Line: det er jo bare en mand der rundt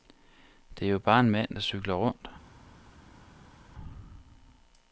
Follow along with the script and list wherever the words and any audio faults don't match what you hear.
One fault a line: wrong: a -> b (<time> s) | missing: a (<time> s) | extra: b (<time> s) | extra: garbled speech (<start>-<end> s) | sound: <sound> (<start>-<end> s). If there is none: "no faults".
extra: cykler (1.6 s)